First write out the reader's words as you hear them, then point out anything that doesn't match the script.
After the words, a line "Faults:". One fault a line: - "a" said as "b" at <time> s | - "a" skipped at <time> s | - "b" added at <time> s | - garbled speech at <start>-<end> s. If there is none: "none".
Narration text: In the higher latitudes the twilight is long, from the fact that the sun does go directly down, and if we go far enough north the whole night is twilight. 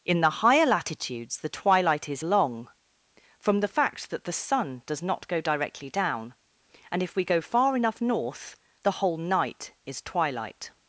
In the higher latitudes the twilight is long, from the fact that the sun does not go directly down, and if we go far enough north the whole night is twilight.
Faults:
- "not" added at 5.0 s